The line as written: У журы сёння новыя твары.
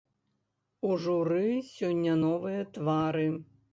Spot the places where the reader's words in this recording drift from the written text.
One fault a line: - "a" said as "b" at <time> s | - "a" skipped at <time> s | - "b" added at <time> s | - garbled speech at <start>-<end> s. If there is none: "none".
none